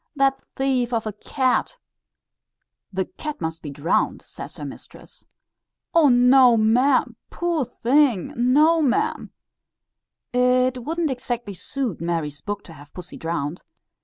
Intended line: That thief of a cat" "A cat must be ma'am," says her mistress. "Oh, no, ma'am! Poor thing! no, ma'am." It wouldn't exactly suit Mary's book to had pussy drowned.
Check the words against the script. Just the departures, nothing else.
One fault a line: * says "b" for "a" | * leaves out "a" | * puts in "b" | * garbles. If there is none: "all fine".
* says "The" for "A"
* says "drowned" for "ma'am"
* says "have" for "had"